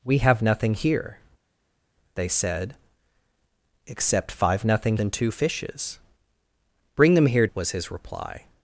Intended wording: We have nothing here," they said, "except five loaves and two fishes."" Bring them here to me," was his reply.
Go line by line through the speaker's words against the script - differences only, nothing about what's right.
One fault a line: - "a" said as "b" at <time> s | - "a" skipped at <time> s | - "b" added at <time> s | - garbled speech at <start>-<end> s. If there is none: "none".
- "loaves" said as "nothing" at 4.6 s
- "to me" skipped at 7.5 s